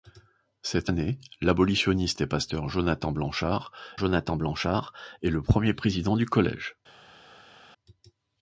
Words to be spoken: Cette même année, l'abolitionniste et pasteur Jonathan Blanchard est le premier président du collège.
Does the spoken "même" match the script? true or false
false